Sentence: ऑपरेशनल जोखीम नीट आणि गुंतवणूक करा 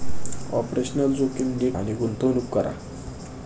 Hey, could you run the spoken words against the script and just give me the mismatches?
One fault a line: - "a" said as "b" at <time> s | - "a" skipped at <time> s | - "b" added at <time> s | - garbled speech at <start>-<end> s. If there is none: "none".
none